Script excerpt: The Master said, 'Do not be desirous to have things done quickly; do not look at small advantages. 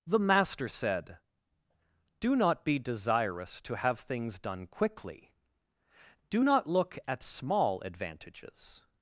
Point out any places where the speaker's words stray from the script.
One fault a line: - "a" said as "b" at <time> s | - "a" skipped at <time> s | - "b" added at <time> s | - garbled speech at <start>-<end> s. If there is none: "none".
none